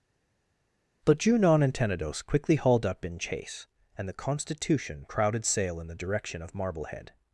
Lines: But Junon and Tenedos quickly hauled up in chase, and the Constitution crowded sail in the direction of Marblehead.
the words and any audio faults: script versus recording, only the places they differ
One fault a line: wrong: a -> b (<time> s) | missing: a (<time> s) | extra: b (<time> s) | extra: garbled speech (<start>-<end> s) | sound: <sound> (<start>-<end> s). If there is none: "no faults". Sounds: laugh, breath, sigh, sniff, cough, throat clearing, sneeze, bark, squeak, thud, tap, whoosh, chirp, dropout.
no faults